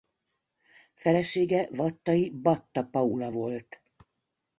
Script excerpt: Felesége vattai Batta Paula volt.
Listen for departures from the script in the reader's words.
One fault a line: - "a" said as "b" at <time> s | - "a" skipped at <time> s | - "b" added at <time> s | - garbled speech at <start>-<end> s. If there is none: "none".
none